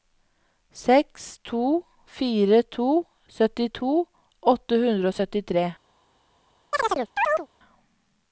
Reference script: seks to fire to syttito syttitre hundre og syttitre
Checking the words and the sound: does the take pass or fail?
fail